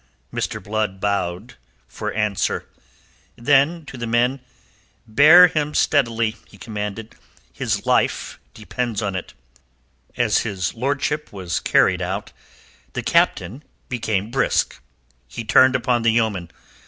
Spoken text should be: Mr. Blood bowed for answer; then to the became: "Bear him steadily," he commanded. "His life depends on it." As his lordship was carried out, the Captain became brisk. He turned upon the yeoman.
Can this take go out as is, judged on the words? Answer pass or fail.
fail